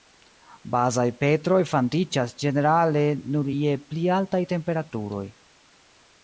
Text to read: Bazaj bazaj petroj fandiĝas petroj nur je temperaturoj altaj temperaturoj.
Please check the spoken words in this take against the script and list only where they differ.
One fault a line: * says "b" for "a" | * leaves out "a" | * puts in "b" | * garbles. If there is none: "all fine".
* leaves out "bazaj"
* says "ĝenerale" for "petroj"
* says "pli" for "temperaturoj"